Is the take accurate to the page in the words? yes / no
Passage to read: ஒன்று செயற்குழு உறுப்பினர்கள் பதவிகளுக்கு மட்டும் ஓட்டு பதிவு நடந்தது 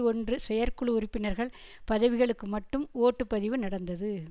yes